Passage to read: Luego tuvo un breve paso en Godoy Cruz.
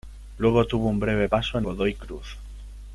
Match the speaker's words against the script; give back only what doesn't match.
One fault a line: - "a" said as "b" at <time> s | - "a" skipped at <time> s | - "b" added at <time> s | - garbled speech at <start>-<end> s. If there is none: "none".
none